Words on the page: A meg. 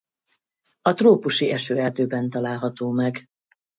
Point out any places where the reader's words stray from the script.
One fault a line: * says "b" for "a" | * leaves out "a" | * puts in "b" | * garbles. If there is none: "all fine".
* puts in "trópusi esőerdőben található"